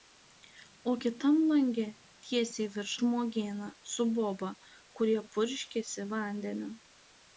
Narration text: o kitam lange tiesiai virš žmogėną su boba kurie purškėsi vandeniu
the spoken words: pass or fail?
pass